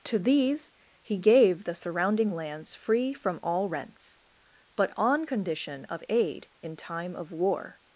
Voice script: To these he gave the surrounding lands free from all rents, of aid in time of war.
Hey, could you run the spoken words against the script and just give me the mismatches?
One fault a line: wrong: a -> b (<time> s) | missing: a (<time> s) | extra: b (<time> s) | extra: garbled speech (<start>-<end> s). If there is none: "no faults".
extra: but on condition (4.8 s)